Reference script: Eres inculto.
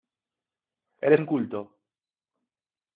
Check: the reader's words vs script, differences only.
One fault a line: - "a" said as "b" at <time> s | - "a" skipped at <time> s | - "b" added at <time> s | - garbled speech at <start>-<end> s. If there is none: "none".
none